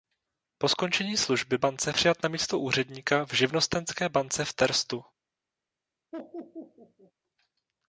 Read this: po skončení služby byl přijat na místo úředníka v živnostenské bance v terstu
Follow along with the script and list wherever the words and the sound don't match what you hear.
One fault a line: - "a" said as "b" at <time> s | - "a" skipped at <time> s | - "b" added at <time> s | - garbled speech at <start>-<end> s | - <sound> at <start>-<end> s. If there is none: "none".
- "byl" said as "bance" at 1.6 s
- laugh at 6.1-7.1 s